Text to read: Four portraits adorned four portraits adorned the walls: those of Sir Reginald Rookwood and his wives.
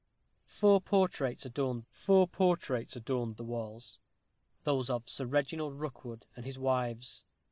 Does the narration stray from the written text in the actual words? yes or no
no